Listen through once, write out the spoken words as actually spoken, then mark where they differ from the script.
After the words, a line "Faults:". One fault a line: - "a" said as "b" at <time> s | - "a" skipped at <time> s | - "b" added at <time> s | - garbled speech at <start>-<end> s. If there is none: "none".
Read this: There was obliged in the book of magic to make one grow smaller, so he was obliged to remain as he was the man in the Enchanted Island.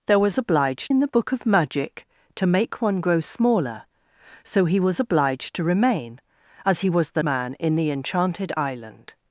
There was obliged in the book of magic to make one grow smaller, so he was obliged to remain as he was the man in the Enchanted Island.
Faults:
none